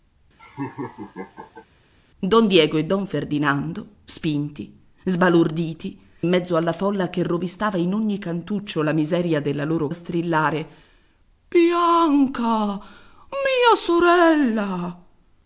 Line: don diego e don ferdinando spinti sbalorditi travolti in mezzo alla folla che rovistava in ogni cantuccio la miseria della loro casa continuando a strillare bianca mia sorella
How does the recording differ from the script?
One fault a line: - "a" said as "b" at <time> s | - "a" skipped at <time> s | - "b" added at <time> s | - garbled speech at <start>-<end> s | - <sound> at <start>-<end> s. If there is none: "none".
- laugh at 0.4-1.7 s
- "travolti" skipped at 6.0 s
- "casa continuando" skipped at 9.9 s